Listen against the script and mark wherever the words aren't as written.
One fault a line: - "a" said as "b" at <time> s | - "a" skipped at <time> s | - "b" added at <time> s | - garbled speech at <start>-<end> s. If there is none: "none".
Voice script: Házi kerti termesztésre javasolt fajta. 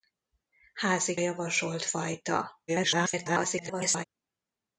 - "kerti termesztésre" skipped at 1.2 s
- garbled speech at 2.7-4.0 s